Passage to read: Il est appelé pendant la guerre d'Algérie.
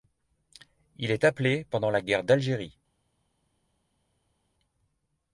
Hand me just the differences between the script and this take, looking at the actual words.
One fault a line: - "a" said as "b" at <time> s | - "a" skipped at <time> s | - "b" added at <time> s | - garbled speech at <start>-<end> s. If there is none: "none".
none